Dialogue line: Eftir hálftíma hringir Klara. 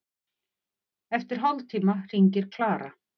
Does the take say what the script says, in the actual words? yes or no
yes